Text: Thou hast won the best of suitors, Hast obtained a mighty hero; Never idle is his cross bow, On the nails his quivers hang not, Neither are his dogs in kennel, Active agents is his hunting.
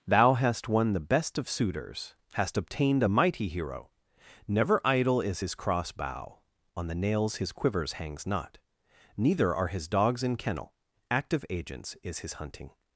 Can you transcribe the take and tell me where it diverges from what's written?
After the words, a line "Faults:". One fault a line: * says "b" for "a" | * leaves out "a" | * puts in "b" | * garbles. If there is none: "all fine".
Thou hast won the best of suitors, Hast obtained a mighty hero; Never idle is his cross bow, On the nails his quivers hangs not, Neither are his dogs in kennel, Active agents is his hunting.
Faults:
* says "hangs" for "hang"